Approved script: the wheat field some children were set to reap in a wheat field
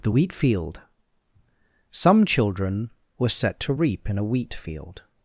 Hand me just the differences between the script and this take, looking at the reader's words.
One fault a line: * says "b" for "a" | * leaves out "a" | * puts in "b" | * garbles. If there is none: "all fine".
all fine